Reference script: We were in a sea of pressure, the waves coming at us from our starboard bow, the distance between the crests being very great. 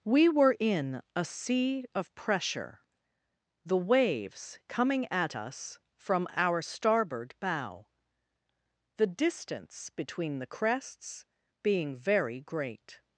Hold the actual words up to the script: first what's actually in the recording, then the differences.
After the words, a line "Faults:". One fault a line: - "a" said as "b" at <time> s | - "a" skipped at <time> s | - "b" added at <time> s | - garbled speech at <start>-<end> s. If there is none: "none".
We were in a sea of pressure, the waves coming at us from our starboard bow, the distance between the crests being very great.
Faults:
none